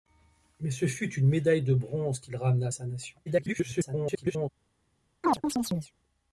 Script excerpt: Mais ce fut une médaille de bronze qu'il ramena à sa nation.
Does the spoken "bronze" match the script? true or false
true